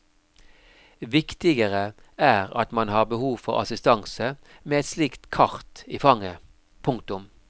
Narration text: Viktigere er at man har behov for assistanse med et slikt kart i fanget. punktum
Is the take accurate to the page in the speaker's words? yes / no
yes